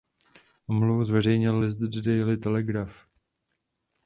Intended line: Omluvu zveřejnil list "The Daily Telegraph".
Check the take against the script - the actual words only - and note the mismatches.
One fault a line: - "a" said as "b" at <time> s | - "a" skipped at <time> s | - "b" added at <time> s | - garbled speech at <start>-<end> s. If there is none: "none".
none